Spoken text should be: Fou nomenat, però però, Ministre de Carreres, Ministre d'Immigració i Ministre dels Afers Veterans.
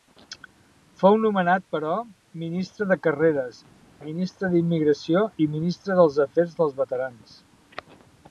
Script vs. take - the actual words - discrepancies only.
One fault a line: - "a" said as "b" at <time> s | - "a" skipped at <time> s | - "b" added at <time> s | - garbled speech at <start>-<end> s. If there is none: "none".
- "però" skipped at 1.9 s
- "dels" added at 6.6 s